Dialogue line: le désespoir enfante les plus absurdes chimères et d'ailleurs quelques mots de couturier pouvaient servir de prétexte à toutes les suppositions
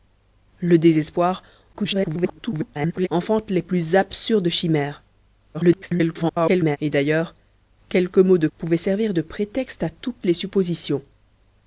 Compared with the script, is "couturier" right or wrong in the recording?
wrong